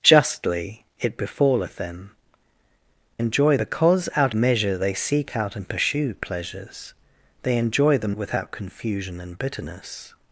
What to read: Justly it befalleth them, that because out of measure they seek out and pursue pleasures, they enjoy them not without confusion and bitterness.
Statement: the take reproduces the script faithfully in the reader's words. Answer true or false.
false